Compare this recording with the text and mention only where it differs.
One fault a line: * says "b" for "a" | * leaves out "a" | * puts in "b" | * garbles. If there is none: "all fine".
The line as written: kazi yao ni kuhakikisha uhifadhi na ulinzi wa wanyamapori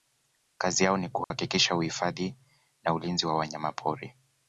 all fine